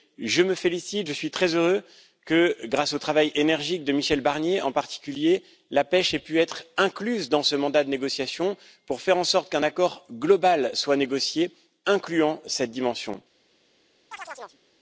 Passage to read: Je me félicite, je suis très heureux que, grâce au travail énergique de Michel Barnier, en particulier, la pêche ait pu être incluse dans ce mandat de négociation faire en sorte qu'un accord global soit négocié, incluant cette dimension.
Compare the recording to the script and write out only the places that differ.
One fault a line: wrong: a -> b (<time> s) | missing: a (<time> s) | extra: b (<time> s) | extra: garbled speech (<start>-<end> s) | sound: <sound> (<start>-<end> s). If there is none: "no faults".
extra: pour (8.8 s)
sound: chirp (14.1-14.6 s)